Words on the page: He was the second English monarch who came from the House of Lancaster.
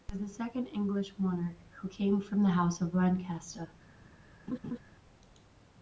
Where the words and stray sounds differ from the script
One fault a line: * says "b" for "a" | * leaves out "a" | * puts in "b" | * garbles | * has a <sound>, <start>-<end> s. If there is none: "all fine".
* has a laugh, 4.5-4.8 s